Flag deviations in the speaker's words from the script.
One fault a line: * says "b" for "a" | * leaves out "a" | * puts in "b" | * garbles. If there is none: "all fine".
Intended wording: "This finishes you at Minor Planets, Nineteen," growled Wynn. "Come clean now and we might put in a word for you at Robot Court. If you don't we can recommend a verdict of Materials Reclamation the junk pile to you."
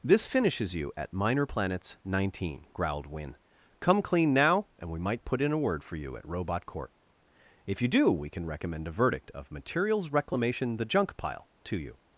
* says "do" for "don't"